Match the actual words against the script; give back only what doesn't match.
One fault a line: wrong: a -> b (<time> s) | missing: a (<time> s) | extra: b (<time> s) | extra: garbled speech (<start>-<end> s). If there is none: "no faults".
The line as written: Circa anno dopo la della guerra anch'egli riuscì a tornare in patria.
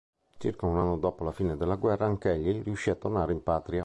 extra: un (0.7 s)
extra: fine (1.3 s)